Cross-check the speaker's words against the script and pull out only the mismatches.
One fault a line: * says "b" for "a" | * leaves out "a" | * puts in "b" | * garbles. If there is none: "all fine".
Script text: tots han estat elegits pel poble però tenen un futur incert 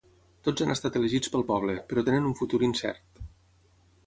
all fine